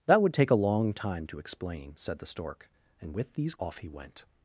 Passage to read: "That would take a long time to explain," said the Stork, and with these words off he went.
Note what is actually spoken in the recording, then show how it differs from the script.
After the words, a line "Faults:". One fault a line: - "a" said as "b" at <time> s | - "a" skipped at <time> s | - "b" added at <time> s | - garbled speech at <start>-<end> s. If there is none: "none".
"That would take a long time to explain," said the Stork, and with these off he went.
Faults:
- "words" skipped at 3.6 s